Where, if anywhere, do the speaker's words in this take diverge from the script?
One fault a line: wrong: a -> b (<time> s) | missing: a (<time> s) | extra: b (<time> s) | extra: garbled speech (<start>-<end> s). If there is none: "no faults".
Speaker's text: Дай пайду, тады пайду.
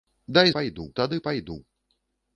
no faults